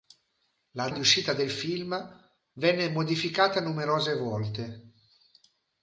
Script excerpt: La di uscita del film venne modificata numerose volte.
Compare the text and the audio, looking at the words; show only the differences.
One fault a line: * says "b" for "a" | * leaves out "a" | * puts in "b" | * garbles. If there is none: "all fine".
all fine